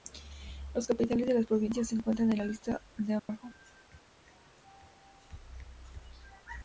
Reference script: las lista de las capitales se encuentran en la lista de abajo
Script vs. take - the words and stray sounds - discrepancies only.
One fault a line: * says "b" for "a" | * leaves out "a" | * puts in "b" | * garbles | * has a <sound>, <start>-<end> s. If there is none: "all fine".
* says "capitales" for "lista"
* says "provincias" for "capitales"
* has a dropout, 3.2-3.3 s